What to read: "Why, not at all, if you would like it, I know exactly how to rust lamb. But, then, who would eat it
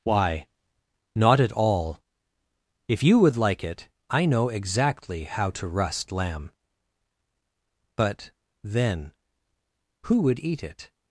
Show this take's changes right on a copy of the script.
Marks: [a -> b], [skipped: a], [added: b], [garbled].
"Why, not at all, if you would like it, I know exactly how to rust lamb. But, then, who would eat it